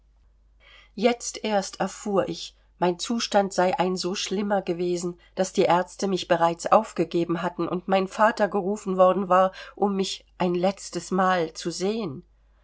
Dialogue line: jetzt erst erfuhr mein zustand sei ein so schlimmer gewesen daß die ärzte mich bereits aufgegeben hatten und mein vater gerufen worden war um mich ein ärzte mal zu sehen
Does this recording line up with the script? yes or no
no